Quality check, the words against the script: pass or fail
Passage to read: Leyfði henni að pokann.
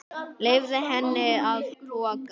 pass